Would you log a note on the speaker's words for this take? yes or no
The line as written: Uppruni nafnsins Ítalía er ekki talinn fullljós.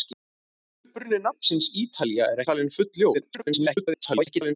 yes